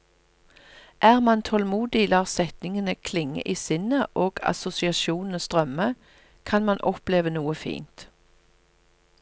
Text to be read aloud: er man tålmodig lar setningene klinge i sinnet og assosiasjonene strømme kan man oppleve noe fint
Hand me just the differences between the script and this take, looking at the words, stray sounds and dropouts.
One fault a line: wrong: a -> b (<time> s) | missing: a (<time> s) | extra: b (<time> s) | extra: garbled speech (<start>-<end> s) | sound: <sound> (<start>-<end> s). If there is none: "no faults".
no faults